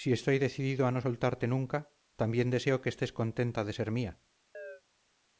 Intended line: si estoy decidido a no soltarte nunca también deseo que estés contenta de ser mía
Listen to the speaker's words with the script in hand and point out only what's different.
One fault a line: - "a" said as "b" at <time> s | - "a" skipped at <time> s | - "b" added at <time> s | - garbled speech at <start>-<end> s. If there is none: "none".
none